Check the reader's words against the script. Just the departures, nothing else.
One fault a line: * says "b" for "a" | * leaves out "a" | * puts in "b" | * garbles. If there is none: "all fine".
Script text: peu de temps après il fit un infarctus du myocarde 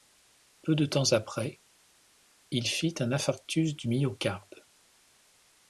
all fine